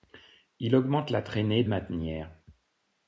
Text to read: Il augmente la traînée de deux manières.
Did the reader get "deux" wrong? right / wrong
wrong